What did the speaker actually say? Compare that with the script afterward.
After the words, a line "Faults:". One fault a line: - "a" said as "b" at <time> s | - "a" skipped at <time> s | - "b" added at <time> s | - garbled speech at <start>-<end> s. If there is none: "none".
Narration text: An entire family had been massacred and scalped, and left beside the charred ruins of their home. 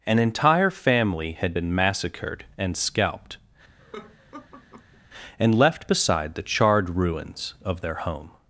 An entire family had been massacred and scalped, and left beside the charred ruins of their home.
Faults:
none